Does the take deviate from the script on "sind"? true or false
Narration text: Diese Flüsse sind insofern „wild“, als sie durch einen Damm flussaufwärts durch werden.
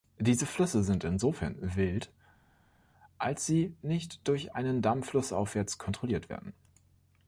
false